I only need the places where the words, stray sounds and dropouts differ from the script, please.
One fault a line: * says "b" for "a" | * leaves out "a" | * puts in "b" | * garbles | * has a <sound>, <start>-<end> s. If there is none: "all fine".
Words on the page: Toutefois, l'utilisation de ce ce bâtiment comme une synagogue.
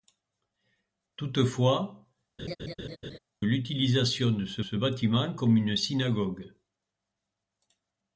* has a laugh, 2.4-3.2 s